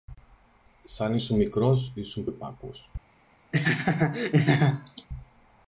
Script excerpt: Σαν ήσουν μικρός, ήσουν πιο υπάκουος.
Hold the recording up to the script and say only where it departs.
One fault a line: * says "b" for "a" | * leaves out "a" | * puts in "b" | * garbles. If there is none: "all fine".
* leaves out "πιο"